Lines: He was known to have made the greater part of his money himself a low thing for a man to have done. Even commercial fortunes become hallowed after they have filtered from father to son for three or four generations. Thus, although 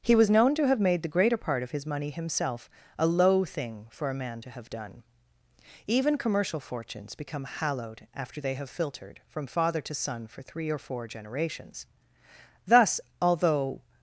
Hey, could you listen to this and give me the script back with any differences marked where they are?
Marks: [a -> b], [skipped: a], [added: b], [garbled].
He was known to have made the greater part of his money himself a low thing for a man to have done. Even commercial fortunes become hallowed after they have filtered from father to son for three or four generations. Thus, although